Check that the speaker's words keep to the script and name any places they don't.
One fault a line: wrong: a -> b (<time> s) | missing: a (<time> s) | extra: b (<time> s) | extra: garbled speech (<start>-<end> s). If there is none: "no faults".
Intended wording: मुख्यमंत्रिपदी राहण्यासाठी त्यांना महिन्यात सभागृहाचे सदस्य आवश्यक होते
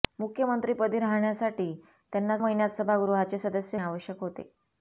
no faults